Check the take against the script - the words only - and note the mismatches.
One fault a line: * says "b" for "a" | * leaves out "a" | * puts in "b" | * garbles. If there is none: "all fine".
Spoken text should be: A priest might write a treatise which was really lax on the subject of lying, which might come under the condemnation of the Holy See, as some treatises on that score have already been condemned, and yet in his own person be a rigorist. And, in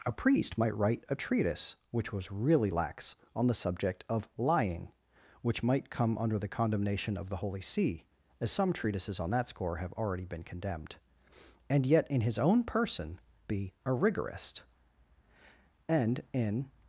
all fine